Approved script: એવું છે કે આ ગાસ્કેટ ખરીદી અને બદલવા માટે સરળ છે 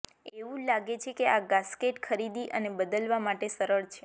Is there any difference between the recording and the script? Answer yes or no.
yes